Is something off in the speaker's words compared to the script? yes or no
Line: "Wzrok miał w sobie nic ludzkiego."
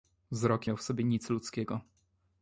no